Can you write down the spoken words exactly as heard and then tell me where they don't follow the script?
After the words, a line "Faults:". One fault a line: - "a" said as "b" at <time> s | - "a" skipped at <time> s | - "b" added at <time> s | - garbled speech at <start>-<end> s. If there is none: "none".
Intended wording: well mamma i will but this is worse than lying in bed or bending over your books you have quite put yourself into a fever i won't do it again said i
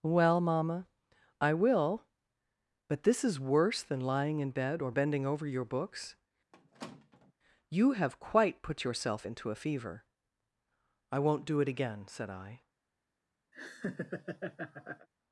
well mamma i will but this is worse than lying in bed or bending over your books you have quite put yourself into a fever i won't do it again said i
Faults:
none